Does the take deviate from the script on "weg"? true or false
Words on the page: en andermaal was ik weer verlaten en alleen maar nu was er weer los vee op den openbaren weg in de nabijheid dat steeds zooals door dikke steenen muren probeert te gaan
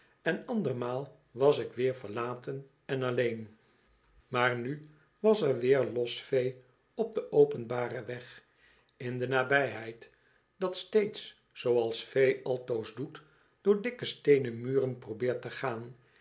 false